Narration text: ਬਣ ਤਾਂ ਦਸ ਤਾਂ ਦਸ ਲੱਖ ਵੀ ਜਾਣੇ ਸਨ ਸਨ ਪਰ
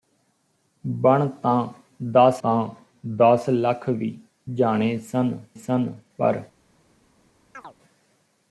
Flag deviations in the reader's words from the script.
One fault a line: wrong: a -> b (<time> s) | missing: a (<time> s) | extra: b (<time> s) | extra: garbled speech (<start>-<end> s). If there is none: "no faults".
no faults